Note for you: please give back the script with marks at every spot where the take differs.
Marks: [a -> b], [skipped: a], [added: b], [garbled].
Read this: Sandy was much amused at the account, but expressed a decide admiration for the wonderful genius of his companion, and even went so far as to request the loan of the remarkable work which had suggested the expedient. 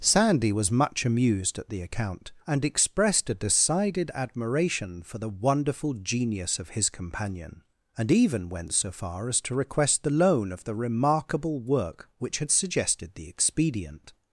Sandy was much amused at the account, [but -> and] expressed a [decide -> decided] admiration for the wonderful genius of his companion, and even went so far as to request the loan of the remarkable work which had suggested the expedient.